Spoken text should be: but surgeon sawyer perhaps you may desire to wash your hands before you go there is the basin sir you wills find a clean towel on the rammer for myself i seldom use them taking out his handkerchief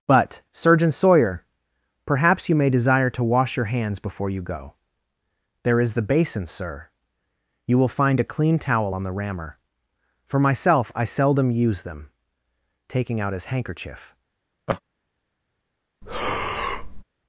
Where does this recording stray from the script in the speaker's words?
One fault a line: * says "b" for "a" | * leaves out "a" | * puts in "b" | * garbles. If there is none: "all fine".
* says "will" for "wills"